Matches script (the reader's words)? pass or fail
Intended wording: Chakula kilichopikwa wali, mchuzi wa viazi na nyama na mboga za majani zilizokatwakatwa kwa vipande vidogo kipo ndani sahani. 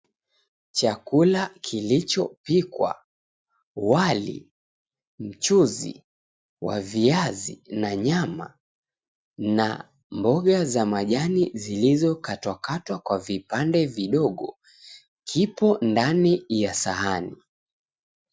fail